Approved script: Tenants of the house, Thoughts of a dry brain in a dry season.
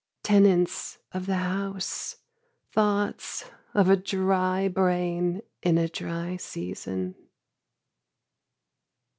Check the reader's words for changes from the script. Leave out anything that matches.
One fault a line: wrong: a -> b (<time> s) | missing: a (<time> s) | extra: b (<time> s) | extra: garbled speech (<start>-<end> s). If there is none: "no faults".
no faults